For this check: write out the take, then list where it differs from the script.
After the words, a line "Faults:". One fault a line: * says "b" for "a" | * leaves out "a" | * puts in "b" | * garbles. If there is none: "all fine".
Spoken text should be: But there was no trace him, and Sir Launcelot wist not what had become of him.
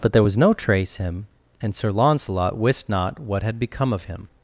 But there was no trace him, and Sir Launcelot wist not what had become of him.
Faults:
all fine